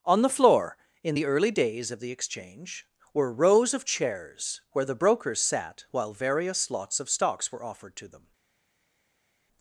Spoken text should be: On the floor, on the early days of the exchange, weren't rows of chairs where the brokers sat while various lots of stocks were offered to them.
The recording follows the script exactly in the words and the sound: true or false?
false